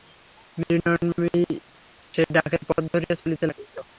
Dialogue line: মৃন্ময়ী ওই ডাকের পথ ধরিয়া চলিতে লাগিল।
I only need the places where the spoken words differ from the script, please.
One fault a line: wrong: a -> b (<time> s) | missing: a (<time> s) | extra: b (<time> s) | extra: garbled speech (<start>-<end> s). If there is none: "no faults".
wrong: ওই -> সেই (2.1 s)